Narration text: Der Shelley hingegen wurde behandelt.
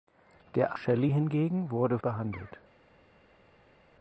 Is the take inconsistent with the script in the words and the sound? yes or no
no